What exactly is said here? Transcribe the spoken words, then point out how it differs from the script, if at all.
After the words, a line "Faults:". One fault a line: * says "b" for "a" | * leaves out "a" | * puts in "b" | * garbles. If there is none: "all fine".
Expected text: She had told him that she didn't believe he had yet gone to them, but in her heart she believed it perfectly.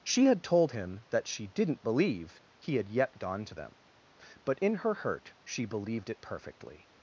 She had told him that she didn't believe he had yet gone to them, but in her hurt she believed it perfectly.
Faults:
* says "hurt" for "heart"